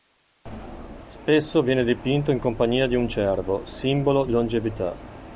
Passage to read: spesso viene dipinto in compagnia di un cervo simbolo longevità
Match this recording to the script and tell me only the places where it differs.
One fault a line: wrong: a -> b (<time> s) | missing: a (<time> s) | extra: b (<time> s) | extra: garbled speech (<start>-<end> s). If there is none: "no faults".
no faults